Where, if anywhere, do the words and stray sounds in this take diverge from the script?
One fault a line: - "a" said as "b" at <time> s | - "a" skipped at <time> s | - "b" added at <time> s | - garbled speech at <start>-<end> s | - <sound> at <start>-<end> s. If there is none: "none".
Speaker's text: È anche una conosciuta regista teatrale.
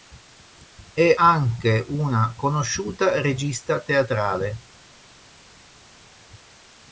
none